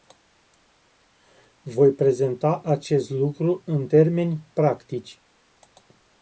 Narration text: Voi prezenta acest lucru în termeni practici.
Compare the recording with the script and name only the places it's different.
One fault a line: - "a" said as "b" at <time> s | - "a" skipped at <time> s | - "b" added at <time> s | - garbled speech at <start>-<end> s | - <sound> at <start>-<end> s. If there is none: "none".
none